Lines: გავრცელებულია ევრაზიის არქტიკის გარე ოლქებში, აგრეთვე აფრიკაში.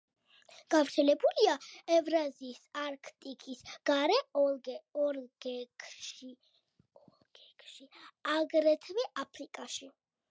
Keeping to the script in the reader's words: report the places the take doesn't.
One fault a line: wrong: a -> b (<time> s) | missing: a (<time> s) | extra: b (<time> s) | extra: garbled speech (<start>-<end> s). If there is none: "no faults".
no faults